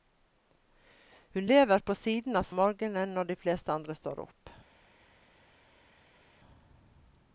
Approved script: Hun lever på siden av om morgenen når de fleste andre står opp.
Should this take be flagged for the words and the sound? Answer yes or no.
no